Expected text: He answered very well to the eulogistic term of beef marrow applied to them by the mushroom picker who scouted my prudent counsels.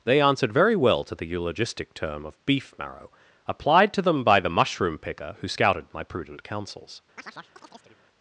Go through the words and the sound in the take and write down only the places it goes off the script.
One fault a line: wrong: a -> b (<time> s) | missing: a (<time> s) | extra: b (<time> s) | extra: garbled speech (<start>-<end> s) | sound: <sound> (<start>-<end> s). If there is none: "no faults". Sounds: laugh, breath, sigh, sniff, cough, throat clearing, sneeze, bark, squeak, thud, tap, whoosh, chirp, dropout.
wrong: He -> They (0.0 s)
sound: chirp (7.2-8.0 s)